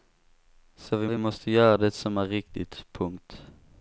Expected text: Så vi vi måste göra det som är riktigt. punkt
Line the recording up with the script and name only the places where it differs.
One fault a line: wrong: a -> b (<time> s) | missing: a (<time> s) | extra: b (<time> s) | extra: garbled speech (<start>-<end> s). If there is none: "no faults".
no faults